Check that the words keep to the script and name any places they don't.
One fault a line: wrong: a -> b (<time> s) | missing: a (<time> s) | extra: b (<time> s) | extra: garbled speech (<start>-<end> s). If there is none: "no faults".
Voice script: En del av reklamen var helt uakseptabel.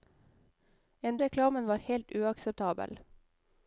missing: del av (1.2 s)